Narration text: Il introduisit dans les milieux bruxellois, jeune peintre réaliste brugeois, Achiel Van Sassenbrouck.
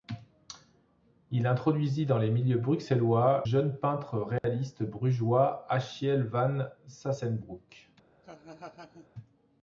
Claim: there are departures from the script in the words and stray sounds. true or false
true